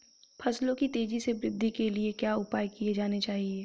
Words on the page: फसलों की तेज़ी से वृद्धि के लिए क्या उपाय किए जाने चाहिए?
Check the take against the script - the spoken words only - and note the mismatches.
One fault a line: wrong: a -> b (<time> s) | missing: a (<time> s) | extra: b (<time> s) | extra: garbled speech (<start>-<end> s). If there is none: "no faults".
no faults